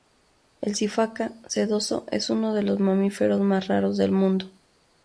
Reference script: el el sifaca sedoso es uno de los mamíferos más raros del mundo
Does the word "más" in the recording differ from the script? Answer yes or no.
no